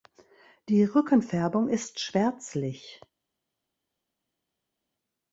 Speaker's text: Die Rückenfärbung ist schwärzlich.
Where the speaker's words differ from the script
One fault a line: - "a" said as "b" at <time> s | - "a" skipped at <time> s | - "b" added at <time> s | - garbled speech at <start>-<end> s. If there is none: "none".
none